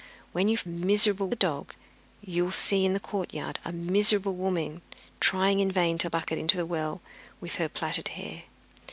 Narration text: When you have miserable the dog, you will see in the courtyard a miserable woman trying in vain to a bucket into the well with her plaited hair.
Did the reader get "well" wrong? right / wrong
right